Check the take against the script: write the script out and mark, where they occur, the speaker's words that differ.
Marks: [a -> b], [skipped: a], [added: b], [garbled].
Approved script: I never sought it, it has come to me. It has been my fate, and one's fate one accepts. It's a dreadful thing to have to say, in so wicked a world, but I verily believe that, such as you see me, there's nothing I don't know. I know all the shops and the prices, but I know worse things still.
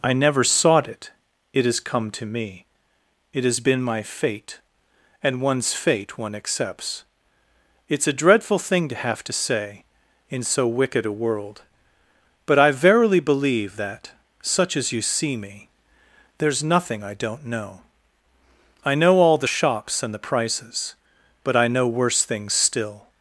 I never sought it, it has come to me. It has been my fate, and one's fate one accepts. It's a dreadful thing to have to say, in so wicked a world, but I verily believe that, such as you see me, there's nothing I don't know. I know all the shops and the prices, but I know worse things still.